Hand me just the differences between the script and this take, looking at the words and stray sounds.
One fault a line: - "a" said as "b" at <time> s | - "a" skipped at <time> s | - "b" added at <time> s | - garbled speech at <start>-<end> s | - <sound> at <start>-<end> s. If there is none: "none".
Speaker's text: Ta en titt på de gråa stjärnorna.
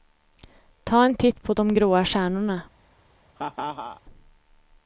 - laugh at 3.4-4.0 s